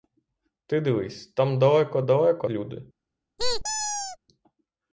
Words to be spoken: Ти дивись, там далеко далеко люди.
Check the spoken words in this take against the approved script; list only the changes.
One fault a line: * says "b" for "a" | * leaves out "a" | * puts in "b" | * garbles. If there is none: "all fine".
all fine